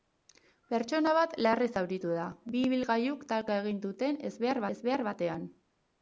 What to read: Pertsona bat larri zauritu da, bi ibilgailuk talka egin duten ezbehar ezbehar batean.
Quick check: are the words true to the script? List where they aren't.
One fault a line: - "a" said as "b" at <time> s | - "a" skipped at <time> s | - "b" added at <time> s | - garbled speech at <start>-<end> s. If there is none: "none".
none